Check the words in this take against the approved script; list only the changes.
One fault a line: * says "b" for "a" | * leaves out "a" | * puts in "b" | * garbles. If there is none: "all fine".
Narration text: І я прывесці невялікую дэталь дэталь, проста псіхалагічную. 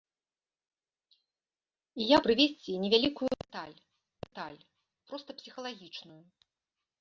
all fine